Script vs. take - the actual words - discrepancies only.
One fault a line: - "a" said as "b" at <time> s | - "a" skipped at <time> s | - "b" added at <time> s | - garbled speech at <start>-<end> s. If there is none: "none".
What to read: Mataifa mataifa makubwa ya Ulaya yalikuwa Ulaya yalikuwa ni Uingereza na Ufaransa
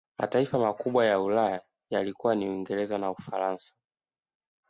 - "mataifa" skipped at 0.6 s
- "Ulaya yalikuwa" skipped at 2.4 s